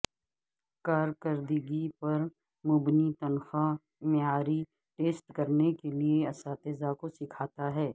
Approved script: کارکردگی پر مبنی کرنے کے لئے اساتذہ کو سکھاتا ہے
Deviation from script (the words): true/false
true